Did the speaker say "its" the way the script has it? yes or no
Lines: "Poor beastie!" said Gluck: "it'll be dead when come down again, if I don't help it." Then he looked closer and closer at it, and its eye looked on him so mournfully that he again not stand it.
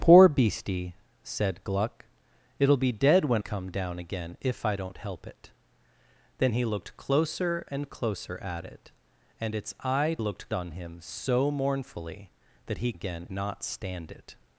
yes